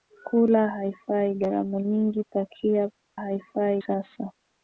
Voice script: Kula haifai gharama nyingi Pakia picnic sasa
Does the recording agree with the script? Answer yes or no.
no